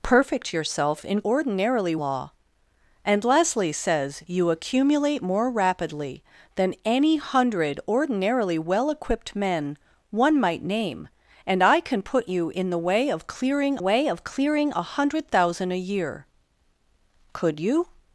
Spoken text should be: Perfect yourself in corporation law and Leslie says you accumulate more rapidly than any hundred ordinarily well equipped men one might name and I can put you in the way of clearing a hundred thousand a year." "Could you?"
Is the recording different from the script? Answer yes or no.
yes